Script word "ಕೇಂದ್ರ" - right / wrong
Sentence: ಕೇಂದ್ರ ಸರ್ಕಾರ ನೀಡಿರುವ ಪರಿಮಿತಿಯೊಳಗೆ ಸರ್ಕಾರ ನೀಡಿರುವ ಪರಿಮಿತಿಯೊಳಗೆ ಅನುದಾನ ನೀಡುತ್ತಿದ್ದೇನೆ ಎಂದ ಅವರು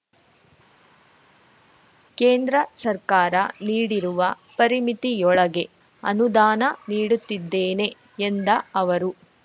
right